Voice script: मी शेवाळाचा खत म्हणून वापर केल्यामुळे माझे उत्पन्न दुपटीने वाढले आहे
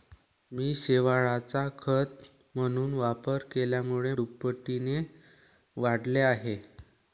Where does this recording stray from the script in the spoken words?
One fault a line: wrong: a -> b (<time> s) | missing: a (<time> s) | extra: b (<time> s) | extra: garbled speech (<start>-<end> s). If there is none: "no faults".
missing: माझे उत्पन्न (4.1 s)